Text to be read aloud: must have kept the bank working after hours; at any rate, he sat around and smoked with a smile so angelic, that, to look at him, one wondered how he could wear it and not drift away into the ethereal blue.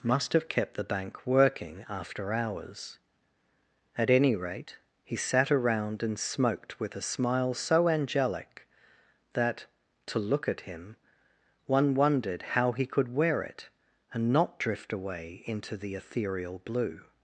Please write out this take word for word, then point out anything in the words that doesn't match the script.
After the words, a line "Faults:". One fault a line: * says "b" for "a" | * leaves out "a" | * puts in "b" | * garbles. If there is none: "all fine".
must have kept the bank working after hours; at any rate, he sat around and smoked with a smile so angelic, that, to look at him, one wondered how he could wear it and not drift away into the ethereal blue.
Faults:
all fine